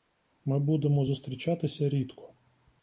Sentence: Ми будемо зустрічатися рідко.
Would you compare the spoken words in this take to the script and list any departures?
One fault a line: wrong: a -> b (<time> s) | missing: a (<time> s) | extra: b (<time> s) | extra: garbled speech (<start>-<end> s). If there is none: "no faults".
no faults